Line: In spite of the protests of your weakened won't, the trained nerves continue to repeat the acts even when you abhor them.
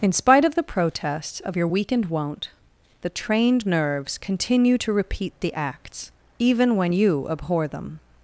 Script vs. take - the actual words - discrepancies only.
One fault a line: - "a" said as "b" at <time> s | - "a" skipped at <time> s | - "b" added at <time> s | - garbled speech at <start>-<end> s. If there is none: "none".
none